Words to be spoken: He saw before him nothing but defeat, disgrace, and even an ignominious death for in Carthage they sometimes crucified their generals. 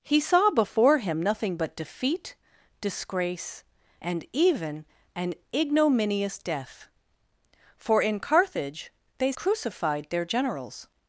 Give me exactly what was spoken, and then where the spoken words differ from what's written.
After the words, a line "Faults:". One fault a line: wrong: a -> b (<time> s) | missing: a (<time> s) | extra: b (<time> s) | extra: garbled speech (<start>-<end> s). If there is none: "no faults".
He saw before him nothing but defeat, disgrace, and even an ignominious death for in Carthage they crucified their generals.
Faults:
missing: sometimes (9.3 s)